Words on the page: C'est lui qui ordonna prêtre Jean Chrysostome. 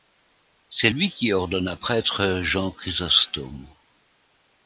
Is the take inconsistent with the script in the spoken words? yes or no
no